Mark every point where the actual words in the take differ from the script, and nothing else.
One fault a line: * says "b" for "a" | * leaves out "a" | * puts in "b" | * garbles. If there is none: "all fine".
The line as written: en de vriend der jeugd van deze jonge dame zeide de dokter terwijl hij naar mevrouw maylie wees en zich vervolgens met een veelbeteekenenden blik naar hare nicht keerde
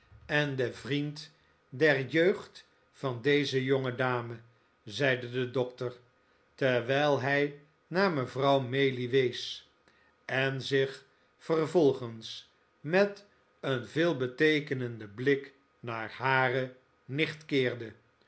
all fine